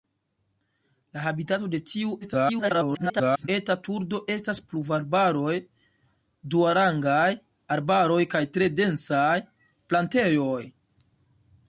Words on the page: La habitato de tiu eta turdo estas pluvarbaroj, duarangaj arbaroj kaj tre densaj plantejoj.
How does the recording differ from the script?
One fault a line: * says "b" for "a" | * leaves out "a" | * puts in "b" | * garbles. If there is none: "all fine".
* garbles